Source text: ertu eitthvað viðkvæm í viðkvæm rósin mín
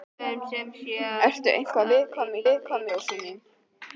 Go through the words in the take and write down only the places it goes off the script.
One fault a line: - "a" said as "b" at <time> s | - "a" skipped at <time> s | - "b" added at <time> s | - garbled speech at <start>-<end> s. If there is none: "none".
none